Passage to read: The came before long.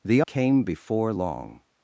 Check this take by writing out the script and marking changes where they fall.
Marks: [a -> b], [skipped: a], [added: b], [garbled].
The came before long.